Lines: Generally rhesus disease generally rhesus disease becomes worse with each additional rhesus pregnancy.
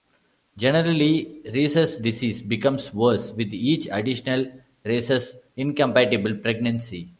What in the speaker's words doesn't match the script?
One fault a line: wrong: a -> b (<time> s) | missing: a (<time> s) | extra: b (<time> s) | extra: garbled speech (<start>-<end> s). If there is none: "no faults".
missing: generally rhesus disease (2.4 s)
extra: incompatible (5.5 s)